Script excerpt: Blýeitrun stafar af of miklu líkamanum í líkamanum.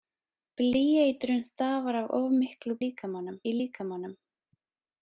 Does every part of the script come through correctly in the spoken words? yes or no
yes